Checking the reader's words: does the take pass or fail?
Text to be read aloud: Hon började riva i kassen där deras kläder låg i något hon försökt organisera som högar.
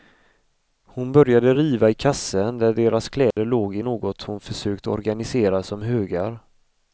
pass